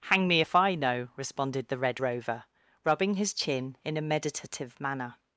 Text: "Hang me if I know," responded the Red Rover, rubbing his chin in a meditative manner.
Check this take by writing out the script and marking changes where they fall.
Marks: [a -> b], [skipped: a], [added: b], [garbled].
"Hang me if I know," responded the Red Rover, rubbing his chin in a meditative manner.